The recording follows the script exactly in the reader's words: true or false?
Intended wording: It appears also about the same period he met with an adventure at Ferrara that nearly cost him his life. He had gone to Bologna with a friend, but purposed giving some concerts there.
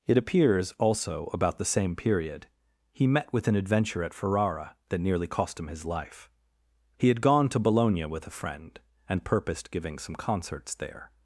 false